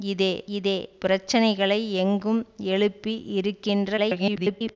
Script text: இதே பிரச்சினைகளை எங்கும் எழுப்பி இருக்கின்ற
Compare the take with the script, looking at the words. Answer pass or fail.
fail